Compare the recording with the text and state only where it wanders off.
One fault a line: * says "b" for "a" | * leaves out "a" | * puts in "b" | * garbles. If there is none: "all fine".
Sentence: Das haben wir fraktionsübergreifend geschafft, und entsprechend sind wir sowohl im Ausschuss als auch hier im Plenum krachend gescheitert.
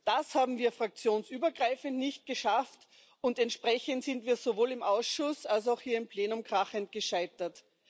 * puts in "nicht"